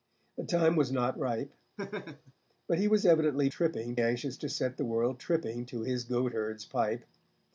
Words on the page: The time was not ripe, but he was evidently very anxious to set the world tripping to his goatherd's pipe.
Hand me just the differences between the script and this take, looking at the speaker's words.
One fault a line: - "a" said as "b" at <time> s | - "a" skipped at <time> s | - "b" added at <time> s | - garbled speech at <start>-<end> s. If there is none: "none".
- "very" said as "tripping" at 3.5 s